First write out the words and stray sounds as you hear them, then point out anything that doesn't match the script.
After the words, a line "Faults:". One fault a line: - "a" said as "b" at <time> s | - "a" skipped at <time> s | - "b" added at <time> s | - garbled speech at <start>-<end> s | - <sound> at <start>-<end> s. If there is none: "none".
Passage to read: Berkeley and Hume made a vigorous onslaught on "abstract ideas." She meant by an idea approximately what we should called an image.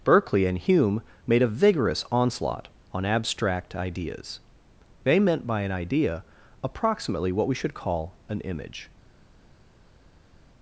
Berkeley and Hume made a vigorous onslaught on "abstract ideas." They meant by an idea approximately what we should call an image.
Faults:
- "She" said as "They" at 5.0 s
- "called" said as "call" at 7.8 s